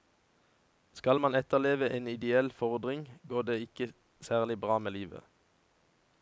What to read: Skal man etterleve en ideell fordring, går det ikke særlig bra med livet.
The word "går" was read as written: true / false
true